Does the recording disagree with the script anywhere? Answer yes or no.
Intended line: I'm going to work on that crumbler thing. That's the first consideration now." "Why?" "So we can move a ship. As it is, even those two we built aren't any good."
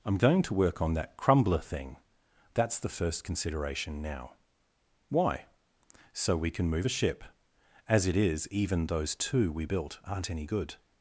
no